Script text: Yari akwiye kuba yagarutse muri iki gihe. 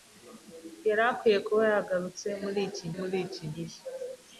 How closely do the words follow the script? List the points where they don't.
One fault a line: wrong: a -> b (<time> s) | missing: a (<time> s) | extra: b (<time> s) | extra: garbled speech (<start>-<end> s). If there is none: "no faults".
extra: muri iki (3.0 s)